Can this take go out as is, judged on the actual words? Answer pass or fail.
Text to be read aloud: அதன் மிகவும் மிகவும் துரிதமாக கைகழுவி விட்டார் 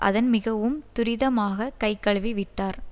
fail